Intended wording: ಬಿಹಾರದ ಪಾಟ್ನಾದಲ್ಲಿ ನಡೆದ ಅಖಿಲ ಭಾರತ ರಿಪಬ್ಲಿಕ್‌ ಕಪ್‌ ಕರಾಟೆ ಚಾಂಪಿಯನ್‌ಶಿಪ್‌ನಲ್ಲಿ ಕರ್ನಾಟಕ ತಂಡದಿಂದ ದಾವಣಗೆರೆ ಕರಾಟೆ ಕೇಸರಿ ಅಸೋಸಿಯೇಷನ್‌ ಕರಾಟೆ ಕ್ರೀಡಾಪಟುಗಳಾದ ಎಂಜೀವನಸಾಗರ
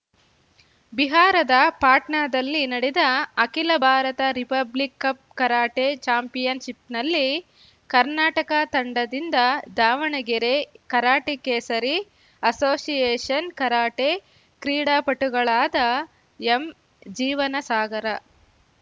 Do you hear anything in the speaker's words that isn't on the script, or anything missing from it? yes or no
no